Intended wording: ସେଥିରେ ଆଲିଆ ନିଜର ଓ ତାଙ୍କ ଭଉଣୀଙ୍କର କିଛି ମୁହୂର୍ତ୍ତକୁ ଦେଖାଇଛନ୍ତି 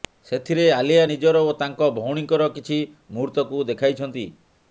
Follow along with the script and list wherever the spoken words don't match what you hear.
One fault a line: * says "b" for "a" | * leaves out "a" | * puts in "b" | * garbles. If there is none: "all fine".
all fine